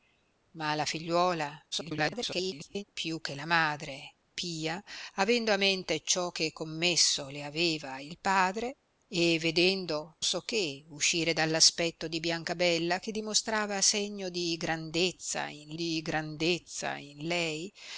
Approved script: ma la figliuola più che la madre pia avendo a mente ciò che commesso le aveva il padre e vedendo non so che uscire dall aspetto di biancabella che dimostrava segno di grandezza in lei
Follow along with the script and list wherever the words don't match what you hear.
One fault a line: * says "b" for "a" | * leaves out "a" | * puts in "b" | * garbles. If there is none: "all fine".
* garbles
* leaves out "non"
* puts in "di grandezza in"